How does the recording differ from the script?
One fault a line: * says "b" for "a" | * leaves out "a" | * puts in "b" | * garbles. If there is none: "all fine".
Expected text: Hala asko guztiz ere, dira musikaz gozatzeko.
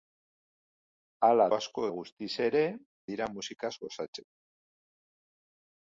all fine